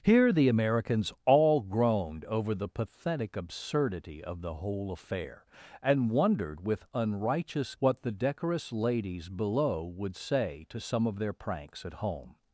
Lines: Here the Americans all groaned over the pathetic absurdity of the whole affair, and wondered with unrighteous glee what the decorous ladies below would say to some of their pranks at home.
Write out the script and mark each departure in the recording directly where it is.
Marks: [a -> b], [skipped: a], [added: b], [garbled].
Here the Americans all groaned over the pathetic absurdity of the whole affair, and wondered with unrighteous [skipped: glee] what the decorous ladies below would say to some of their pranks at home.